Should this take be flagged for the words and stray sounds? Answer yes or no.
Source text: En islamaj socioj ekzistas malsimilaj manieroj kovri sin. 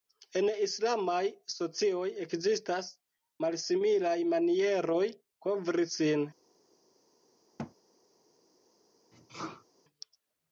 yes